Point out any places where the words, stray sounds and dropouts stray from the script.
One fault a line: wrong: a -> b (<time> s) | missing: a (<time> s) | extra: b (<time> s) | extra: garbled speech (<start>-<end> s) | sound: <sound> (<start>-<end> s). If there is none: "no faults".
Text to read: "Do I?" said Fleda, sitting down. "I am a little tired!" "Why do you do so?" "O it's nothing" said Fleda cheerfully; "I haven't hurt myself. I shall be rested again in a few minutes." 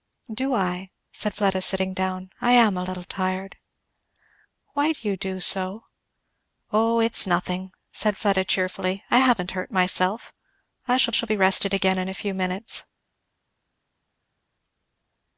extra: shall (11.1 s)